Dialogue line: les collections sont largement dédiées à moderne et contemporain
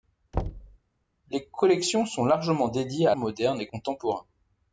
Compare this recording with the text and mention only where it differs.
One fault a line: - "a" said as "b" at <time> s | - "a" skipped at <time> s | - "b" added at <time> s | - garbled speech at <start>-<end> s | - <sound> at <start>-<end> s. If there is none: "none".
- thud at 0.3-0.8 s